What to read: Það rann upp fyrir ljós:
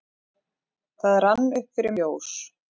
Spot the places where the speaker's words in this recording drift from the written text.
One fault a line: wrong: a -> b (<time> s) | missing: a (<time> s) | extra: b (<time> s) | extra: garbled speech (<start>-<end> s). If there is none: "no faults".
no faults